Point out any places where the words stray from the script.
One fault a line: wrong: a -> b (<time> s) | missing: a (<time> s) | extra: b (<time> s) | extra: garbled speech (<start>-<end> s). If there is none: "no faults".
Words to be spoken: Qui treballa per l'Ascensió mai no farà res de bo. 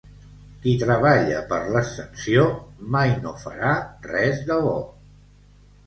no faults